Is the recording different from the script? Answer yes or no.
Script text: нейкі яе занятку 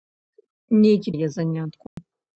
no